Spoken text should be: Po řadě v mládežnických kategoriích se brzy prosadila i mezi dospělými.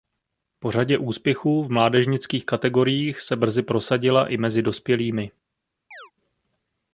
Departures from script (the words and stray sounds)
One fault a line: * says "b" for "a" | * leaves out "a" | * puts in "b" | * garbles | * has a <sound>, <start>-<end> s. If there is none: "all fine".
* puts in "úspěchů"
* has a chirp, 5.9-6.1 s